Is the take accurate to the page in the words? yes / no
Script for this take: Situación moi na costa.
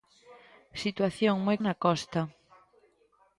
yes